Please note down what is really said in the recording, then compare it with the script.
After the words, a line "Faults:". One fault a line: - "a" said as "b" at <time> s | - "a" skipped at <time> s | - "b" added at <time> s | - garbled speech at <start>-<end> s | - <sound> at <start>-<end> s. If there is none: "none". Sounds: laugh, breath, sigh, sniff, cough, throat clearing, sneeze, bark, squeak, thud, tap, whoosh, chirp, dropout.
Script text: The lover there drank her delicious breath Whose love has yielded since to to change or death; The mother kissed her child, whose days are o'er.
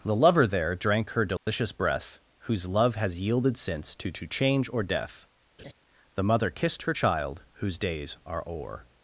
The lover there drank her delicious breath Whose love has yielded since to to change or death; The mother kissed her child, whose days are o'er.
Faults:
- dropout at 1.4-1.5 s
- laugh at 5.6-5.7 s